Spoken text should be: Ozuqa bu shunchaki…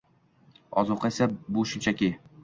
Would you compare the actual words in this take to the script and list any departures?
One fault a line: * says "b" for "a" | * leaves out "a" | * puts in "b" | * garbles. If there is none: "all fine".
* puts in "esa"